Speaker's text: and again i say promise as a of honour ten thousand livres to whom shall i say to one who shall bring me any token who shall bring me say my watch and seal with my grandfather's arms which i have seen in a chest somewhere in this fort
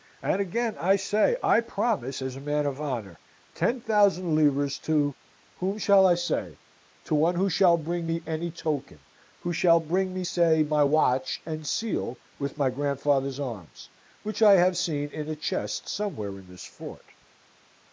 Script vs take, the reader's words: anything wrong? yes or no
yes